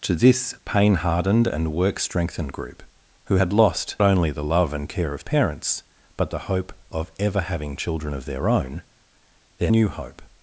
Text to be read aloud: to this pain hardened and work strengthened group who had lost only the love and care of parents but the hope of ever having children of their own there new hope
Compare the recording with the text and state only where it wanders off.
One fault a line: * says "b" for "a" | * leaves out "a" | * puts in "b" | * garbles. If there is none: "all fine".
all fine